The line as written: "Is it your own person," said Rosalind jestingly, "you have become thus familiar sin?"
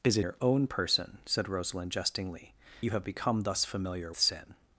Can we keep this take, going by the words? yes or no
yes